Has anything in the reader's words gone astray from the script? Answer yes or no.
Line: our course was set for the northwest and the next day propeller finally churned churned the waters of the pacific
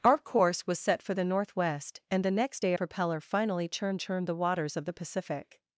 no